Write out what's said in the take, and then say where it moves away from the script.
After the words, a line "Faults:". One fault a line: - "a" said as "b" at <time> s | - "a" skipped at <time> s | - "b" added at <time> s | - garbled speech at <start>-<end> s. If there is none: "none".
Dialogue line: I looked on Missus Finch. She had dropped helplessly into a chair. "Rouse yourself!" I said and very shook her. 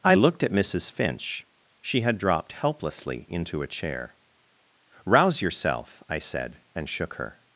I looked at Missus Finch. She had dropped helplessly into a chair. "Rouse yourself!" I said and shook her.
Faults:
- "on" said as "at" at 0.4 s
- "very" skipped at 6.9 s